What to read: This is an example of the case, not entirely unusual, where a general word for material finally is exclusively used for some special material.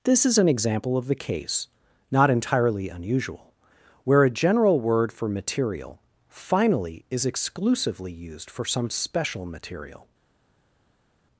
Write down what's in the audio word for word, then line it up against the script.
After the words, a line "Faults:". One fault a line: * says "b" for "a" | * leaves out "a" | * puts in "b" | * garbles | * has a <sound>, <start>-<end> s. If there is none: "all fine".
This is an example of the case, not entirely unusual, where a general word for material finally is exclusively used for some special material.
Faults:
all fine